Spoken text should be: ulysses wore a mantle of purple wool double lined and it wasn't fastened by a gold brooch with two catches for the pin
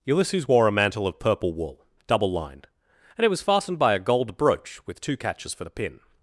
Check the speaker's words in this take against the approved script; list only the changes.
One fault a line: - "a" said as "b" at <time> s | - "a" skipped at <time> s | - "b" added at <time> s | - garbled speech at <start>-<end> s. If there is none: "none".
- "wasn't" said as "was" at 3.3 s